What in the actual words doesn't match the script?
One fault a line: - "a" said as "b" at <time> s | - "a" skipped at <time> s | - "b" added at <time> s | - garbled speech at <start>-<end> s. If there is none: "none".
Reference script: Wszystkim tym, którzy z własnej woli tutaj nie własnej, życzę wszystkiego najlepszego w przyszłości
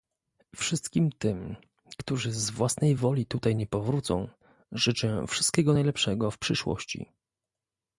- "własnej" said as "powrócą" at 3.7 s